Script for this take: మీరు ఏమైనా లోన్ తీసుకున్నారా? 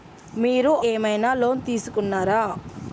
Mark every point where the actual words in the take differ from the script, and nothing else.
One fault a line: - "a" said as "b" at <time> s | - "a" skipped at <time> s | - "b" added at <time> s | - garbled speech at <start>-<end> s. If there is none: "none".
none